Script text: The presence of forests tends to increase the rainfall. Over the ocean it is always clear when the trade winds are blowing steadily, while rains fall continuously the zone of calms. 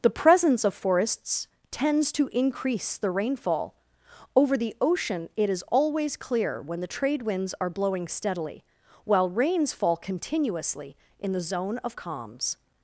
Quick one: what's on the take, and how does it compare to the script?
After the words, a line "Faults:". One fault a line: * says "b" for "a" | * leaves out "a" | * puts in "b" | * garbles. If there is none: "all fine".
The presence of forests tends to increase the rainfall. Over the ocean it is always clear when the trade winds are blowing steadily, while rains fall continuously in the zone of calms.
Faults:
* puts in "in"